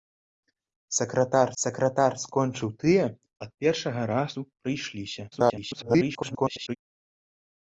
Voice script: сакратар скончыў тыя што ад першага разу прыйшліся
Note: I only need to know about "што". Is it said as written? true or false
false